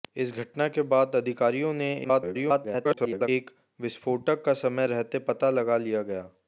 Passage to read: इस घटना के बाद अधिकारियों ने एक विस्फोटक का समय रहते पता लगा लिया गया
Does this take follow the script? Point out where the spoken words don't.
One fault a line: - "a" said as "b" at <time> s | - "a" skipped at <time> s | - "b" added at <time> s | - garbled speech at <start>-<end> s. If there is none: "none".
- garbled speech at 2.0-3.3 s